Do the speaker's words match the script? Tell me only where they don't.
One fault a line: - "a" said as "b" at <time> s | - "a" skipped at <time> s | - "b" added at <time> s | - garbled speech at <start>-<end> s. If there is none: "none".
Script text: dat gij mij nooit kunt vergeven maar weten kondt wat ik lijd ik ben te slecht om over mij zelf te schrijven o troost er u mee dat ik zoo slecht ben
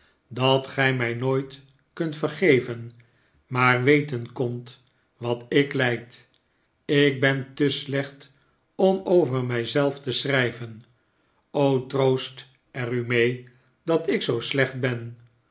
none